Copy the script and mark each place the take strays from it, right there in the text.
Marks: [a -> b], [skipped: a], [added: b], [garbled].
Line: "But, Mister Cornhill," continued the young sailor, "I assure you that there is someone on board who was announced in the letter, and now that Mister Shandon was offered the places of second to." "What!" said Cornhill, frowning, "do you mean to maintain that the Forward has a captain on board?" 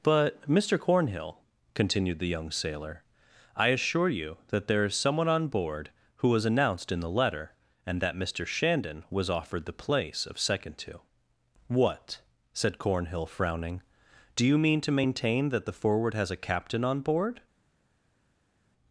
"But, Mister Cornhill," continued the young sailor, "I assure you that there is someone on board who was announced in the letter, and [skipped: now] that Mister Shandon was offered the [places -> place] of second to." "What!" said Cornhill, frowning, "do you mean to maintain that the Forward has a captain on board?"